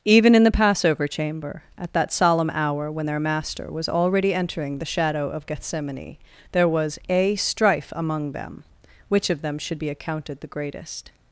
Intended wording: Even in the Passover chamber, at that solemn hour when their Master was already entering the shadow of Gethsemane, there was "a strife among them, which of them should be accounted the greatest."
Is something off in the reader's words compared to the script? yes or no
no